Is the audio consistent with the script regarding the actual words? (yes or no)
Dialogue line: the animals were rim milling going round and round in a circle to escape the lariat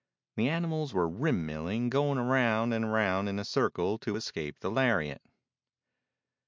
yes